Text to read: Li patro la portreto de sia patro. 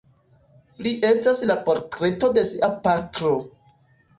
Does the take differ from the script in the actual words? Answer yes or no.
yes